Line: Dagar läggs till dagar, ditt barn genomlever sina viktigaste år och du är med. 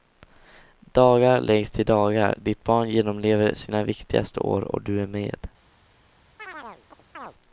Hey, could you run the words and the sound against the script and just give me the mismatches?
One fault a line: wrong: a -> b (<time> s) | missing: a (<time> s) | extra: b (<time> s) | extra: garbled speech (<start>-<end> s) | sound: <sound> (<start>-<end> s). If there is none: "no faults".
sound: chirp (6.4-7.3 s)